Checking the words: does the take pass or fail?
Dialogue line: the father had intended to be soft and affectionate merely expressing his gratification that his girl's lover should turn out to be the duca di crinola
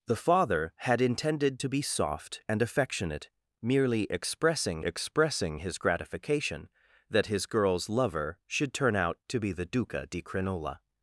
fail